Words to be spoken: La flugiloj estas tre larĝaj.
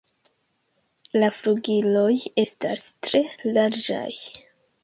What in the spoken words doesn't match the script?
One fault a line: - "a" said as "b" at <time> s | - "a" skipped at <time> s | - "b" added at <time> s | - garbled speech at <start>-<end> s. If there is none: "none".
none